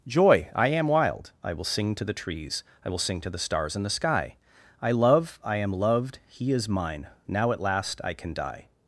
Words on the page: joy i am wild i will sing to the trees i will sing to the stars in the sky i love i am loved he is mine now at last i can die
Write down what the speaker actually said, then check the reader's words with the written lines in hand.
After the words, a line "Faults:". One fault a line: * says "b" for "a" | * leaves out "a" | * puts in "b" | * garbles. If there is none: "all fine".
joy i am wild i will sing to the trees i will sing to the stars in the sky i love i am loved he is mine now at last i can die
Faults:
all fine